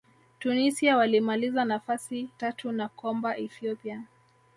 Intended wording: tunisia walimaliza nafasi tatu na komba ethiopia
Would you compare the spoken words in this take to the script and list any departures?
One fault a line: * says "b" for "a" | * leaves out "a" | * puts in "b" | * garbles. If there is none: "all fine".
all fine